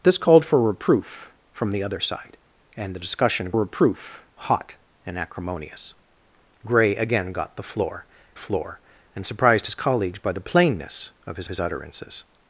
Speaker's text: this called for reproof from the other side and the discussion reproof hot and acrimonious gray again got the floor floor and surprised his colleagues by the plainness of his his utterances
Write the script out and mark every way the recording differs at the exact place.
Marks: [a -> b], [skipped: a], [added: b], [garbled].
this called for reproof from the other side and the discussion reproof hot and acrimonious gray again got the floor floor and surprised his colleagues by the plainness of his his utterances